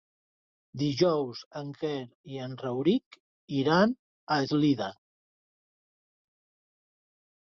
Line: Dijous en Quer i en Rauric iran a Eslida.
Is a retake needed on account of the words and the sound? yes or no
no